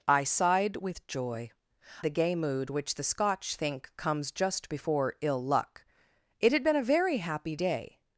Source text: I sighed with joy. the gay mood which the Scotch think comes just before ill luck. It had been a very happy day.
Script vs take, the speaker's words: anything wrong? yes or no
no